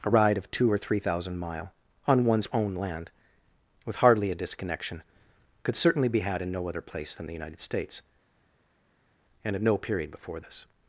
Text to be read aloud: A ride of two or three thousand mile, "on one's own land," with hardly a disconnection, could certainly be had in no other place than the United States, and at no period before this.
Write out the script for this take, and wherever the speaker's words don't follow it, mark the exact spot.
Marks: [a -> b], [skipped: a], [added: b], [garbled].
A ride of two or three thousand mile, "on one's own land," with hardly a disconnection, could certainly be had in no other place than the United States, and at no period before this.